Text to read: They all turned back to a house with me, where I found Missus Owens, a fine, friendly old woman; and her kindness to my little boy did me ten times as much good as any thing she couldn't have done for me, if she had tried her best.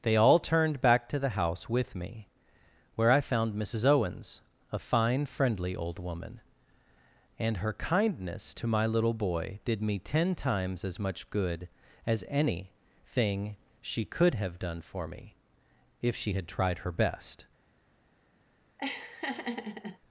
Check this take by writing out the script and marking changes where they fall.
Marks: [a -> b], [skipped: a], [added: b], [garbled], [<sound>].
They all turned back to [a -> the] house with me, where I found Missus Owens, a fine, friendly old woman; and her kindness to my little boy did me ten times as much good as any thing she [couldn't -> could] have done for me, if she had tried her best. [laugh]